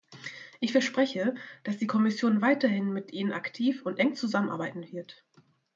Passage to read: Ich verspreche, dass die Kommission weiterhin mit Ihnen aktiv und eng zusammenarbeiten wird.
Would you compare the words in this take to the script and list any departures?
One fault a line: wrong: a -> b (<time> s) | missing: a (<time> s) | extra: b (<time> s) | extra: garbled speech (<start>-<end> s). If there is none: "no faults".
no faults